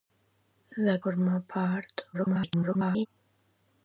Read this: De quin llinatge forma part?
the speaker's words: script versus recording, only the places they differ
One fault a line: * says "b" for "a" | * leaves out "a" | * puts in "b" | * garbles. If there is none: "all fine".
* leaves out "quin llinatge"
* garbles